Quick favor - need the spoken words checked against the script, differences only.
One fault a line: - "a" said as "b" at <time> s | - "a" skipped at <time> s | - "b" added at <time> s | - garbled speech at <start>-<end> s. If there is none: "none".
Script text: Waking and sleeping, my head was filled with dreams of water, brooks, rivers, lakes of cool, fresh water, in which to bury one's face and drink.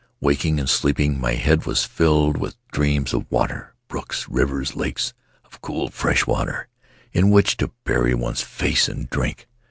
none